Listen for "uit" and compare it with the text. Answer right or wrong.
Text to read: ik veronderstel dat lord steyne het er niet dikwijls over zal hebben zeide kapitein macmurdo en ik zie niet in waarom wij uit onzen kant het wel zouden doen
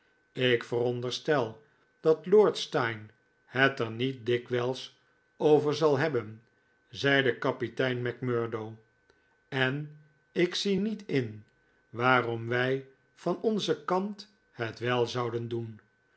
wrong